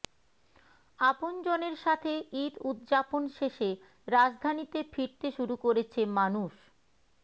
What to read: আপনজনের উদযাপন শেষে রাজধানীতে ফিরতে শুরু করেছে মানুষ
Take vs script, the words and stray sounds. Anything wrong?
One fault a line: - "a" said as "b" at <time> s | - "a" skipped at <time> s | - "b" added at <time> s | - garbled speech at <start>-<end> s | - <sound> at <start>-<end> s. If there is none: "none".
- "সাথে ঈদ" added at 1.8 s